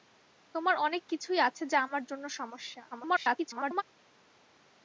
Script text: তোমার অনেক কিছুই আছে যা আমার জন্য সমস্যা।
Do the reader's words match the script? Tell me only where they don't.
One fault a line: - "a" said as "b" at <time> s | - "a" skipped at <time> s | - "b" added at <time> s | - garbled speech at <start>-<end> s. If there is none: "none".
- garbled speech at 2.9-3.8 s